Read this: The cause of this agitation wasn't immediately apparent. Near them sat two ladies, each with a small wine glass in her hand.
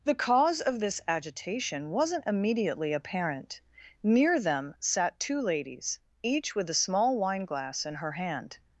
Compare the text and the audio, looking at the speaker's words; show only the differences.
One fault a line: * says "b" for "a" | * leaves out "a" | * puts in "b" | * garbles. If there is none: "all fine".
all fine